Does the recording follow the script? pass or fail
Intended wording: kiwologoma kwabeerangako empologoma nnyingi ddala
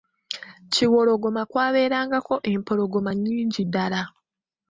pass